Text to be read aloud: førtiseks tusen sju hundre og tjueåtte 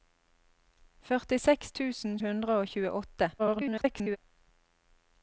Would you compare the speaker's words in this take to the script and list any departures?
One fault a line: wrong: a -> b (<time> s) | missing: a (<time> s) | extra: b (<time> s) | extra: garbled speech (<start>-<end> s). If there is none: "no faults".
missing: sju (2.2 s)
extra: garbled speech (3.4-4.2 s)